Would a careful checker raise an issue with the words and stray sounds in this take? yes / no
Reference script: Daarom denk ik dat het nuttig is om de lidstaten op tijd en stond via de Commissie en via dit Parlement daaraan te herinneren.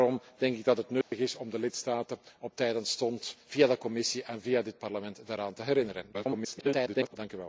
yes